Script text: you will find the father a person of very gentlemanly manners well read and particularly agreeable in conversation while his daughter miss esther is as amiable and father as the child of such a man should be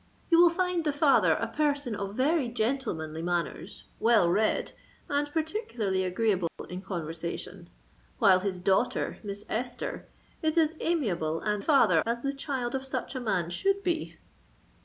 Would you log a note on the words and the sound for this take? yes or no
yes